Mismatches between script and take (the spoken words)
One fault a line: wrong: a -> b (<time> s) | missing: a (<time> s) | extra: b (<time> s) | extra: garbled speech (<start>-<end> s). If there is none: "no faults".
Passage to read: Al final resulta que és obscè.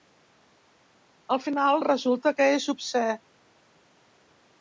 no faults